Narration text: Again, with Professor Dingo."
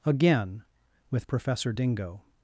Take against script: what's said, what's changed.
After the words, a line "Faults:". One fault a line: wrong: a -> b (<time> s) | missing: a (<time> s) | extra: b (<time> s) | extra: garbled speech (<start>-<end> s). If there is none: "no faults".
Again, with Professor Dingo."
Faults:
no faults